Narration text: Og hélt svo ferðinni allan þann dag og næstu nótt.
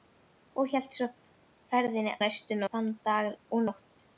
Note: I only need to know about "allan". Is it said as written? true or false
false